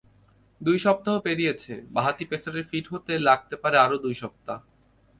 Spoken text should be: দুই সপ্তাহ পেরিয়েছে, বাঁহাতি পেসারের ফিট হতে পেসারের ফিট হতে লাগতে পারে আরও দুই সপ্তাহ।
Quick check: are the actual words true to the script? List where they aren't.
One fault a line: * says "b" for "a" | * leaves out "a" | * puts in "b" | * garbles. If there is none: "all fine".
* leaves out "পেসারের ফিট হতে"